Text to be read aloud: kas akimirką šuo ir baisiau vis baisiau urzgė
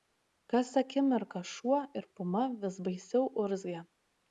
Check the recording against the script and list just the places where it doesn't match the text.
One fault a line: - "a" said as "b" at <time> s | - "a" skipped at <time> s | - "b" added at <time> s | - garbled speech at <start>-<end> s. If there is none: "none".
- "baisiau" said as "puma" at 2.2 s